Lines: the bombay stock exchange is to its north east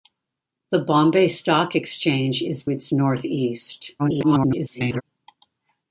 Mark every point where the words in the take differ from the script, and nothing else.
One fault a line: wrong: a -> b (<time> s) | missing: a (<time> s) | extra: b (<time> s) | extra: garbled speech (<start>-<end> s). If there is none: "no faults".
missing: to (2.6 s)
extra: garbled speech (4.0-5.0 s)